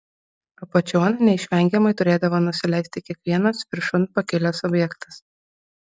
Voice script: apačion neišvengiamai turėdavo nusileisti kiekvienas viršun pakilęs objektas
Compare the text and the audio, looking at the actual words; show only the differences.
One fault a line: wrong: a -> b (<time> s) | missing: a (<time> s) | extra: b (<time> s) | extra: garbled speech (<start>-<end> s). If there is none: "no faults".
no faults